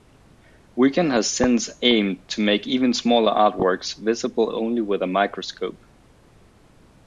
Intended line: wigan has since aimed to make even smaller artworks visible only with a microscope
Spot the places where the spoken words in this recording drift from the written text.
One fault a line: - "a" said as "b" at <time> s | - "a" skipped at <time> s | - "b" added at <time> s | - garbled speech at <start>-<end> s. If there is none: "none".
none